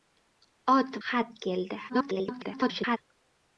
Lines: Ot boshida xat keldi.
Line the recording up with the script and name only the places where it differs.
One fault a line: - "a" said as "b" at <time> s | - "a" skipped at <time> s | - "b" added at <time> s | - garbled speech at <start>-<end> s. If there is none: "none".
- "boshida" skipped at 1.0 s
- garbled speech at 1.9-3.0 s